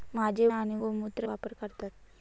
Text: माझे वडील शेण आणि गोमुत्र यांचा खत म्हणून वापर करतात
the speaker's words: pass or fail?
fail